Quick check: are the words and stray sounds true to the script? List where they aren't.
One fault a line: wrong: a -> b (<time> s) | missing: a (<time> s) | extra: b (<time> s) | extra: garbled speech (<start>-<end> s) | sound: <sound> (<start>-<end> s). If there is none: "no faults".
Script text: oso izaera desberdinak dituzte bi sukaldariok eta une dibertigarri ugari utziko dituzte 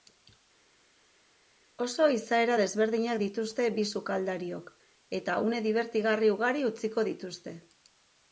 no faults